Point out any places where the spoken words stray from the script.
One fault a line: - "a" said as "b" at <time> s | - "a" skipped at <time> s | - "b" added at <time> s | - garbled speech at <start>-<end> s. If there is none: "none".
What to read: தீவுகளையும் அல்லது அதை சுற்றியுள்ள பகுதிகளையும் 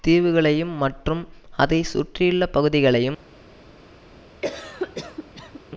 - "அல்லது" said as "மற்றும்" at 0.8 s